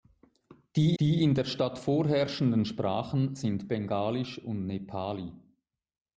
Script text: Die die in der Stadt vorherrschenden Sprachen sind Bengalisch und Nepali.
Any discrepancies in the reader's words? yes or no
no